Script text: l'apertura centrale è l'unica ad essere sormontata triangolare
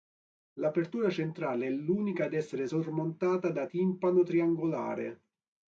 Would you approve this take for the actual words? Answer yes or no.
no